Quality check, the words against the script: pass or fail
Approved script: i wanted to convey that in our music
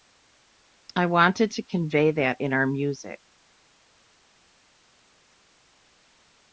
pass